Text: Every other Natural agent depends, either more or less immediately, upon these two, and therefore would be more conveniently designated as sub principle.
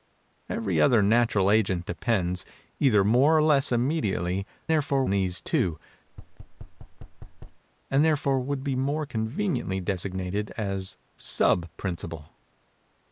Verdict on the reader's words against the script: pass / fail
fail